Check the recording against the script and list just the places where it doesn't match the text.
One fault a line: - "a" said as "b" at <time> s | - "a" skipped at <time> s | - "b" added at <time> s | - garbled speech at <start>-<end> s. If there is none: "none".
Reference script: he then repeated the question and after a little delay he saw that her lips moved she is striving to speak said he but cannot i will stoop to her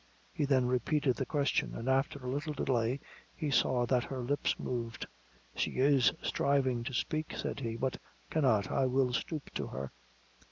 none